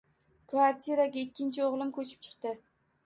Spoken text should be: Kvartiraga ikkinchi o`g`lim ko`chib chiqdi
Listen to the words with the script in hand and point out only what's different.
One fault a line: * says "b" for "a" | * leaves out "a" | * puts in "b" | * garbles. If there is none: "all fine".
all fine